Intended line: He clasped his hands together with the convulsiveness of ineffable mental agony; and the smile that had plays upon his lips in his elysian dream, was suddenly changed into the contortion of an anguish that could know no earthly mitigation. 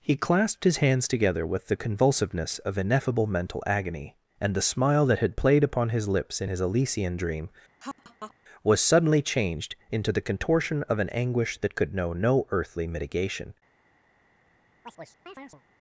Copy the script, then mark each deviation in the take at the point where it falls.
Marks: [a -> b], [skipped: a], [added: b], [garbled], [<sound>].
He clasped his hands together with the convulsiveness of ineffable mental agony; and the smile that had [plays -> played] upon his lips in his elysian dream, [laugh] was suddenly changed into the contortion of an anguish that could know no earthly mitigation. [chirp]